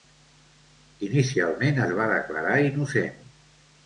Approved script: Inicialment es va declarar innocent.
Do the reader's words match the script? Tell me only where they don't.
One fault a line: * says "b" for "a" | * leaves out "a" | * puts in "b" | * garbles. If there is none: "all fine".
all fine